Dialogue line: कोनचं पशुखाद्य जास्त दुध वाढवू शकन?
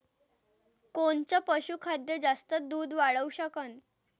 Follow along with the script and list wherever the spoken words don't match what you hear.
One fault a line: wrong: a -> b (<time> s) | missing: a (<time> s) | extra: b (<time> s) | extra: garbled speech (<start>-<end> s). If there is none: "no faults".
no faults